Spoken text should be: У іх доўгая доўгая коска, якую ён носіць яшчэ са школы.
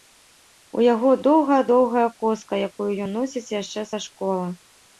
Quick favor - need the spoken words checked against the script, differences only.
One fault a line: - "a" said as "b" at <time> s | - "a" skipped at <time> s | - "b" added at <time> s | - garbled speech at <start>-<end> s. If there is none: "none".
- "іх" said as "яго" at 0.9 s